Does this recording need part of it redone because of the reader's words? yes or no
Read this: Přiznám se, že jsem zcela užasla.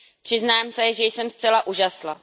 no